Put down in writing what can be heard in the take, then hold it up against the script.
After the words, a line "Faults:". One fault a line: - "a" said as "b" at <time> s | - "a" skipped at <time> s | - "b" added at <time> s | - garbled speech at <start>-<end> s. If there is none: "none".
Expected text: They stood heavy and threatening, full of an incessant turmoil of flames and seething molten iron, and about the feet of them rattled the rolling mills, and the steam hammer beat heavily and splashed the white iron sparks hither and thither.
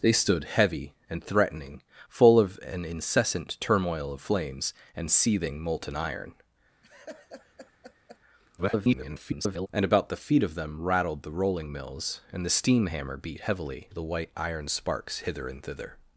They stood heavy and threatening, full of an incessant turmoil of flames and seething molten iron, [garbled] and about the feet of them rattled the rolling mills, and the steam hammer beat heavily the white iron sparks hither and thither.
Faults:
- garbled speech at 8.6-9.7 s
- "and splashed" skipped at 13.9 s